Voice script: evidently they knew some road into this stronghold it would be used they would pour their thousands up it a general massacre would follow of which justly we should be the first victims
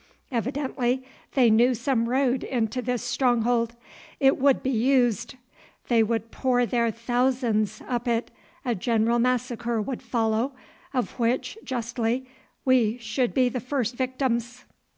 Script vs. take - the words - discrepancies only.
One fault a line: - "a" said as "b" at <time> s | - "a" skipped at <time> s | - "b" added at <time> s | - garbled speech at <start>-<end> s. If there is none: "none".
none